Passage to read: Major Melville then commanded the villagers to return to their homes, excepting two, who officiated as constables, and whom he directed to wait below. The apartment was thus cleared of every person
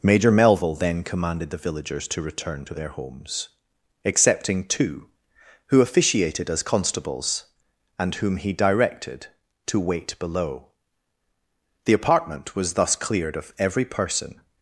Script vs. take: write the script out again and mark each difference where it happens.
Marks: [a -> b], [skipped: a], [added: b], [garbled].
Major Melville then commanded the villagers to return to their homes, excepting two, who officiated as constables, and whom he directed to wait below. The apartment was thus cleared of every person